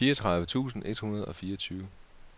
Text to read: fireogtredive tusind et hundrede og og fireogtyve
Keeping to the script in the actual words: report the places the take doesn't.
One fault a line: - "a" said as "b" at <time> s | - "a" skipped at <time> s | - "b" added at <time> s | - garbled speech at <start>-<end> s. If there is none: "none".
- "og" skipped at 1.4 s